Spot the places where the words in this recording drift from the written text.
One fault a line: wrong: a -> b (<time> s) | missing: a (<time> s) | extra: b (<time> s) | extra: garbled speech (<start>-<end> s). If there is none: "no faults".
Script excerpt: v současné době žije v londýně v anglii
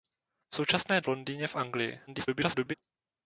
missing: době žije (1.0 s)
extra: garbled speech (2.1-2.7 s)